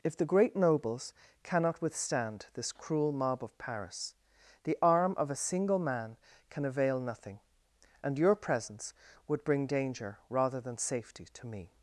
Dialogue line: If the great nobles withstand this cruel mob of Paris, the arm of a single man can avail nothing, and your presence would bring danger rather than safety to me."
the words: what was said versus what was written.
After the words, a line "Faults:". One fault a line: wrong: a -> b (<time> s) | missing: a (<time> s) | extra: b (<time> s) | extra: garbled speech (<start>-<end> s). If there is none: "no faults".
If the great nobles cannot withstand this cruel mob of Paris, the arm of a single man can avail nothing, and your presence would bring danger rather than safety to me."
Faults:
extra: cannot (1.4 s)